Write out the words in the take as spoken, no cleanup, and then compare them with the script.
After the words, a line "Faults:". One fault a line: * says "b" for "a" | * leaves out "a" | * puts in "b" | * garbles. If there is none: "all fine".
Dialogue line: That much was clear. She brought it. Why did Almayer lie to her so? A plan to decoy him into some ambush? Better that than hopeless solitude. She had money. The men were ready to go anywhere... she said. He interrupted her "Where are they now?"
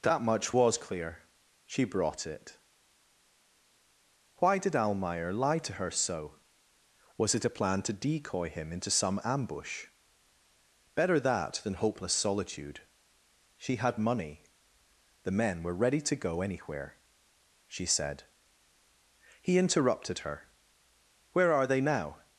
That much was clear. She brought it. Why did Almayer lie to her so? Was it a plan to decoy him into some ambush? Better that than hopeless solitude. She had money. The men were ready to go anywhere... she said. He interrupted her "Where are they now?"
Faults:
* puts in "Was it"